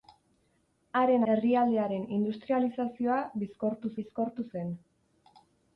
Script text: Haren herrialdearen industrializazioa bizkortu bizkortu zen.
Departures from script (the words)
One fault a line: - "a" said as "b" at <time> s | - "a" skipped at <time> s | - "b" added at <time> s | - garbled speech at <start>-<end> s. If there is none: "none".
none